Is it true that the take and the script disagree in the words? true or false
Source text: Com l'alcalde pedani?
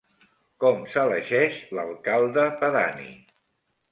true